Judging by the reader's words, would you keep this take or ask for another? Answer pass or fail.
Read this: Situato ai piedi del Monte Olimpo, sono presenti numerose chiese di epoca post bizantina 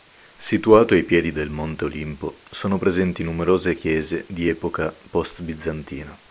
pass